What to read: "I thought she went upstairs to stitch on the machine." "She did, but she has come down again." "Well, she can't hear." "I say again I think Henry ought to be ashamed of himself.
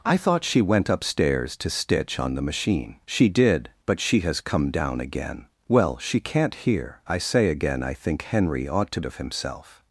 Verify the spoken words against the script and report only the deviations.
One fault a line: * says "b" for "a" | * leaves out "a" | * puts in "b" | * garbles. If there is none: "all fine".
* leaves out "be ashamed"